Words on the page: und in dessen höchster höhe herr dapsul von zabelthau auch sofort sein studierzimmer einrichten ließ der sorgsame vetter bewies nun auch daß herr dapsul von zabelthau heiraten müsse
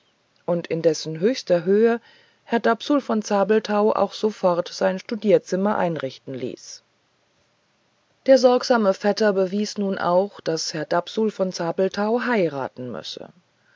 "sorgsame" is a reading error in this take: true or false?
false